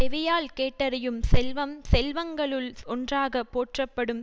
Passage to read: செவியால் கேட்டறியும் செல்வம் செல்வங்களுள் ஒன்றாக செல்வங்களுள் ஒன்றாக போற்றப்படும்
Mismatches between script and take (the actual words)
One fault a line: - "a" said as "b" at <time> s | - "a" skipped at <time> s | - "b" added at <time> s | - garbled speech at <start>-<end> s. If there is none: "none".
- "செல்வங்களுள் ஒன்றாக" skipped at 3.4 s